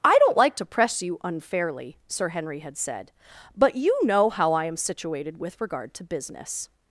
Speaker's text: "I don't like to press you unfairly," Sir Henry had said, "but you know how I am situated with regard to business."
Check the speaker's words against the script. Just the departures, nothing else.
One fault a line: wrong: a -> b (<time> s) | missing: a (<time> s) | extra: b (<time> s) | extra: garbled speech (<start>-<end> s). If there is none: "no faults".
no faults